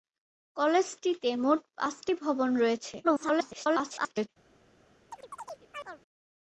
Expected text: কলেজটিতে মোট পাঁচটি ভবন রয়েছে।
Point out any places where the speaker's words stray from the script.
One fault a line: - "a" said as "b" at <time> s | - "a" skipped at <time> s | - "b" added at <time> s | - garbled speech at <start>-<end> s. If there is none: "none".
- garbled speech at 3.0-4.3 s